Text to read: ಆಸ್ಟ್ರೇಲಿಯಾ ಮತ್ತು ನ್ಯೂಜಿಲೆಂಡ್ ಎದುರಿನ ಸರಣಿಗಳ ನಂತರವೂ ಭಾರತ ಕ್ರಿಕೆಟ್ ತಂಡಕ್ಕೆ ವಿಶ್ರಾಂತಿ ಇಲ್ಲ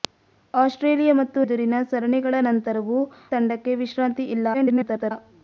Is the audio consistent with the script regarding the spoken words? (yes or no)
no